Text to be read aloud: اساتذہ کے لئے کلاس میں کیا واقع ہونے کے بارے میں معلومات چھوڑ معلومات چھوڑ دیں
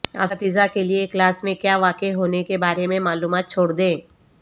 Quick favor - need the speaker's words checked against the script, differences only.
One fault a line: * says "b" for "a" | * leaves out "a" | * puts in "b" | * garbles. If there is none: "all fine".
* leaves out "معلومات چھوڑ"